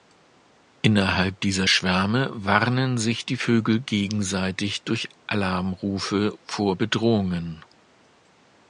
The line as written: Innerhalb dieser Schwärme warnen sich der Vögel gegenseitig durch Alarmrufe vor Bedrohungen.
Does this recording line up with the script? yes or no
no